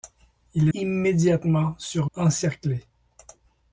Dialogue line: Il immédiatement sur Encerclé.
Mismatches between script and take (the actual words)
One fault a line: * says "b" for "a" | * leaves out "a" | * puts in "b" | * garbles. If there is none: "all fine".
all fine